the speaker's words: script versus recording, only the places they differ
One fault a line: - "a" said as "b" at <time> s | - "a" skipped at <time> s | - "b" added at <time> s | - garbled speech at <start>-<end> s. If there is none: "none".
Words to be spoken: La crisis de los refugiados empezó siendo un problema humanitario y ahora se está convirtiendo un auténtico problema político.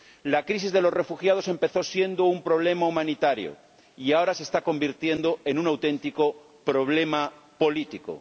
- "en" added at 5.4 s